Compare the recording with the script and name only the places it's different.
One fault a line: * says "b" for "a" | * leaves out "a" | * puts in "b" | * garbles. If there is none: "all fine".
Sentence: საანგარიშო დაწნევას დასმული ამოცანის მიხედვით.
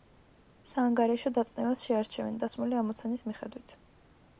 * puts in "შეარჩევენ"